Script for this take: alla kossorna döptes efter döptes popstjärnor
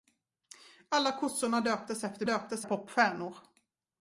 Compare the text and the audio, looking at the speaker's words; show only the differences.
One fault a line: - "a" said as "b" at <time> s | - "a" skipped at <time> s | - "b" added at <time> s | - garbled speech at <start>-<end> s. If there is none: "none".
none